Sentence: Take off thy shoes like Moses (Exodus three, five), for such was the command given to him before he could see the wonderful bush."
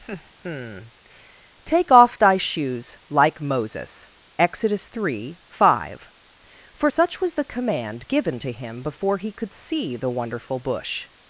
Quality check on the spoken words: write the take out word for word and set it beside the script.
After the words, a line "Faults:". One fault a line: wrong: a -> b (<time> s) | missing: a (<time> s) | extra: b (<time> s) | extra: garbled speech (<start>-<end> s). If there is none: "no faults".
Take off thy shoes like Moses (Exodus three, five), for such was the command given to him before he could see the wonderful bush."
Faults:
no faults